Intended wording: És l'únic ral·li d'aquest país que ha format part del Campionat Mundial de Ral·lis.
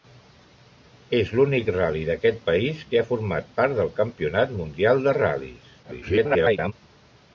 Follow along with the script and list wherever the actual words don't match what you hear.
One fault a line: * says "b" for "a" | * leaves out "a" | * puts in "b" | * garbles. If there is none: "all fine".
* garbles